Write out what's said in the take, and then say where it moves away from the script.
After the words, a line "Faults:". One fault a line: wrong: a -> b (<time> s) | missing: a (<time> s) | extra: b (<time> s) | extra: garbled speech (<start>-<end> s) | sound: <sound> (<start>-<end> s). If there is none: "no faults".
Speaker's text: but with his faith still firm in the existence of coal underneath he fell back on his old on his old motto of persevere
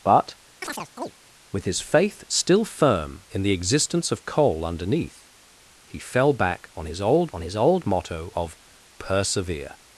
but with his faith still firm in the existence of coal underneath he fell back on his old on his old motto of persevere
Faults:
sound: chirp (0.6-1.1 s)